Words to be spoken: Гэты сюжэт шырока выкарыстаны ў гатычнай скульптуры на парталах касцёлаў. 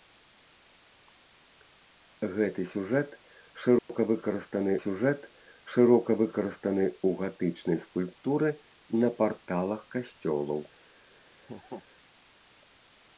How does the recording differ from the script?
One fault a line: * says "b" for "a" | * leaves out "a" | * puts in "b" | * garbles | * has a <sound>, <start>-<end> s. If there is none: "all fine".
* has a dropout, 3.8-3.9 s
* puts in "сюжэт шырока выкарыстаны"
* has a laugh, 11.4-11.9 s